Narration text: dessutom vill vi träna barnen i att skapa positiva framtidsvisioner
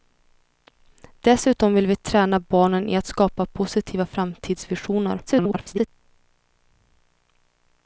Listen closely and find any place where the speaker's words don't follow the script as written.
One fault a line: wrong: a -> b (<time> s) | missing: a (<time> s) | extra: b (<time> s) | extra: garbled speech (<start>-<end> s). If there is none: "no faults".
extra: garbled speech (5.3-5.9 s)